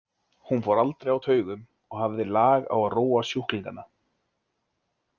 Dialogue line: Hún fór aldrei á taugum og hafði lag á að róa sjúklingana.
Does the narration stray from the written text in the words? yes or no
no